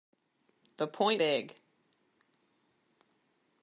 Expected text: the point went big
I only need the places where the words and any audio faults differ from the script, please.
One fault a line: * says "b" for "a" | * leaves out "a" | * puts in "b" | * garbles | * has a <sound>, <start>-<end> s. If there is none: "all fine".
* leaves out "went"